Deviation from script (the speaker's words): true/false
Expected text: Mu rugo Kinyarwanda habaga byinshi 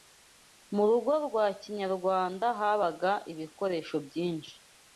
true